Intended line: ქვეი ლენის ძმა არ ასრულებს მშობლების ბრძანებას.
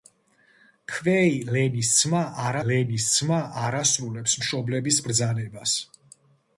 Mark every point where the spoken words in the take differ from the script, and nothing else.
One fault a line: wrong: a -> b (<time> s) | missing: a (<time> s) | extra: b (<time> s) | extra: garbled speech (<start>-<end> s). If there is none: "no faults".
extra: ლენის ძმა არ (2.7 s)